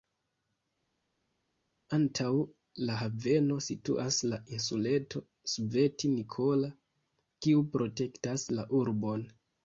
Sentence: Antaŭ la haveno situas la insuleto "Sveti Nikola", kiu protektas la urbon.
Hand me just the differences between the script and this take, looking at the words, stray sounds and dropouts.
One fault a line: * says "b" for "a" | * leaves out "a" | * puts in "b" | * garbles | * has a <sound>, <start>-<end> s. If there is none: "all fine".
all fine